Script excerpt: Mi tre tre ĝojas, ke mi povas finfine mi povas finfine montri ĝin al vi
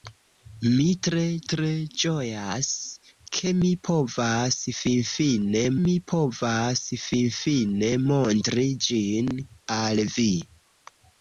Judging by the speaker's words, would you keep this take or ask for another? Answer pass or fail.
pass